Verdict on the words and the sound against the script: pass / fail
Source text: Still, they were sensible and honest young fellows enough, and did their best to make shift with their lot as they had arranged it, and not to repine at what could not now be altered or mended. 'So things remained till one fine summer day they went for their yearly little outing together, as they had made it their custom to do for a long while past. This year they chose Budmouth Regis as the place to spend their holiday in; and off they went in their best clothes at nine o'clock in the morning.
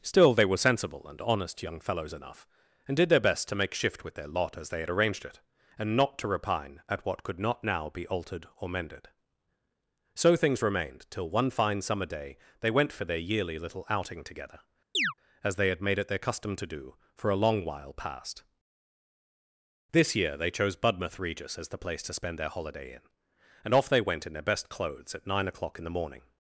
fail